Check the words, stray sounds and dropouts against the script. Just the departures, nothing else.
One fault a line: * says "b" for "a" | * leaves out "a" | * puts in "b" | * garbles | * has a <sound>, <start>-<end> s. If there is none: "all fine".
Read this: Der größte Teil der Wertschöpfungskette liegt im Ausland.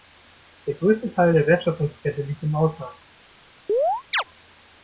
* has a chirp, 3.7-4.2 s